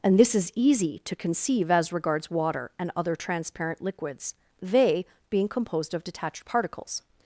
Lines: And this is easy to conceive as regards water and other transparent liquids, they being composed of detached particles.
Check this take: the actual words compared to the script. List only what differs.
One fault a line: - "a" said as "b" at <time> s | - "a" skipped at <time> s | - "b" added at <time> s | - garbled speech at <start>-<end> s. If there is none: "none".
none